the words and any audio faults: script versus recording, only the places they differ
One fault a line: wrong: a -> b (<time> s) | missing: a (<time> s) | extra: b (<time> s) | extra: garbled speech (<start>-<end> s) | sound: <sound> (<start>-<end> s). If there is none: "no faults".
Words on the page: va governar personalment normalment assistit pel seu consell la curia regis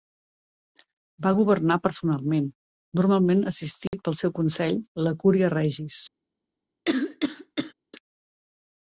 sound: dropout (3.9-3.9 s)
sound: cough (6.9-7.7 s)